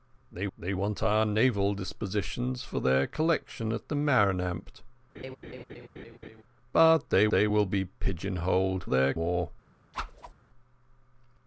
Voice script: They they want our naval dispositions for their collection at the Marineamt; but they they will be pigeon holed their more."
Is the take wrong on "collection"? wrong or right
right